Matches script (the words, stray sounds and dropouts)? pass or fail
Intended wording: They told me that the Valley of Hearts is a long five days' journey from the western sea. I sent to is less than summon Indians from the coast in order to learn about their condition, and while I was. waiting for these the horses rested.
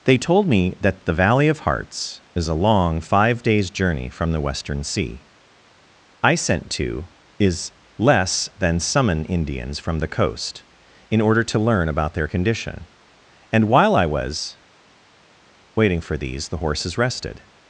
pass